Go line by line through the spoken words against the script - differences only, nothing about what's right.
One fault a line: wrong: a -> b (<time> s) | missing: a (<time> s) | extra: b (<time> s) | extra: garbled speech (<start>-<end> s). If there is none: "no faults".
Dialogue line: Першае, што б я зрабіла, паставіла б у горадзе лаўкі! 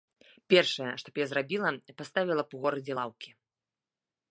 no faults